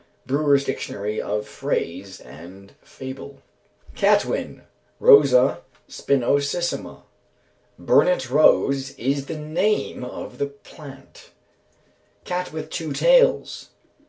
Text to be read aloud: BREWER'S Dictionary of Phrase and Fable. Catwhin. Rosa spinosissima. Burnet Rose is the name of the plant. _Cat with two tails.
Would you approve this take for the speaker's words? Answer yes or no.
yes